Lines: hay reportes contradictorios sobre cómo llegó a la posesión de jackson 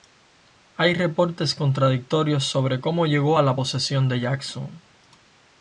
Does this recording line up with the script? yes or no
yes